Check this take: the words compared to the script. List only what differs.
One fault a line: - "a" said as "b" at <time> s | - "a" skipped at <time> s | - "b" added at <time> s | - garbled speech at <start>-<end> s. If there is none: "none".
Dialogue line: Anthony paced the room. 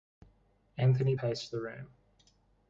none